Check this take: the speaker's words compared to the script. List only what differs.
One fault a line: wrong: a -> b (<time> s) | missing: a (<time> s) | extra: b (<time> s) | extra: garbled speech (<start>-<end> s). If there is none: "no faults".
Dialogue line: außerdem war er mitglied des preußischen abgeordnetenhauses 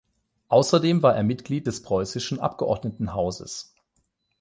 no faults